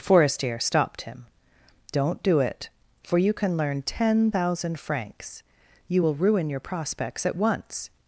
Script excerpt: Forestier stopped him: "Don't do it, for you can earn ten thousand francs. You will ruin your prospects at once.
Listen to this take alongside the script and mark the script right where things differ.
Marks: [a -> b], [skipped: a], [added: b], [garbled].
Forestier stopped him: "Don't do it, for you can [earn -> learn] ten thousand francs. You will ruin your prospects at once.